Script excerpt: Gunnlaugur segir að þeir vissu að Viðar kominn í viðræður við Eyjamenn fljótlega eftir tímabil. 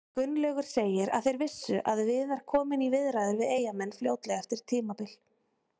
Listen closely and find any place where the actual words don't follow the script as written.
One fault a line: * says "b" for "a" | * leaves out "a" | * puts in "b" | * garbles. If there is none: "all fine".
all fine